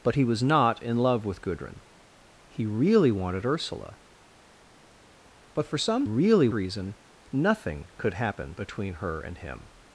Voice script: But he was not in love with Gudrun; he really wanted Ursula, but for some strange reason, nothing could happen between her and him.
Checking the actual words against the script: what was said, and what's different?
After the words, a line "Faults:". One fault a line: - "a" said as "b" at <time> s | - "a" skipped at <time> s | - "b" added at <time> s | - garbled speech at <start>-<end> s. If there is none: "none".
But he was not in love with Gudrun; he really wanted Ursula, but for some really reason, nothing could happen between her and him.
Faults:
- "strange" said as "really" at 6.0 s